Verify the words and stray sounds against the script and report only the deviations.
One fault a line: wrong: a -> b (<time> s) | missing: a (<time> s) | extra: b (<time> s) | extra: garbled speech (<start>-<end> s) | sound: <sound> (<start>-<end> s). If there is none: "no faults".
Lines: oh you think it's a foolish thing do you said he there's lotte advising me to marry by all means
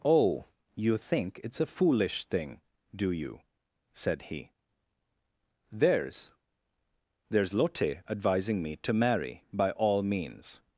extra: there's (7.3 s)